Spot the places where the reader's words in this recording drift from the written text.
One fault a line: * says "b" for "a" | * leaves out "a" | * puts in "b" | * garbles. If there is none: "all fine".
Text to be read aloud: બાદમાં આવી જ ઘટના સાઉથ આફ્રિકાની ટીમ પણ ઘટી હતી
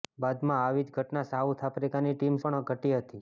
all fine